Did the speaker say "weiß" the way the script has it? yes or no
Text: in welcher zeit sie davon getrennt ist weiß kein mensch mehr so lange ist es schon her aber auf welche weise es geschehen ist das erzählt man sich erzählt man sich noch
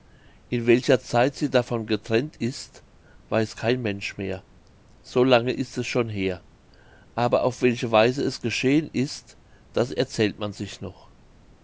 yes